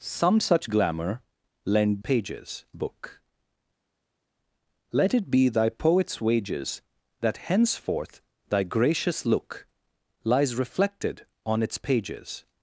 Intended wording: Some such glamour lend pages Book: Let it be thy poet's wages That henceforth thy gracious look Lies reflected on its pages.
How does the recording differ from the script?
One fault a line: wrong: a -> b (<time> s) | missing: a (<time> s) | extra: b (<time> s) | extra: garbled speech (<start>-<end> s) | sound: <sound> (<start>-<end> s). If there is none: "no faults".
no faults